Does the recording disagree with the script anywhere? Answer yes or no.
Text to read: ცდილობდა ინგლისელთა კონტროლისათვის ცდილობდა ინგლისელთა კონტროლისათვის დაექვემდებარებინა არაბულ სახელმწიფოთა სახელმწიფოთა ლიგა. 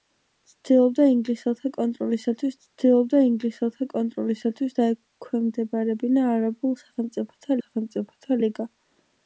no